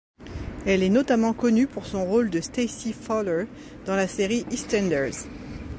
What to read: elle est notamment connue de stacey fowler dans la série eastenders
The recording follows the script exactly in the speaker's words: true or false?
false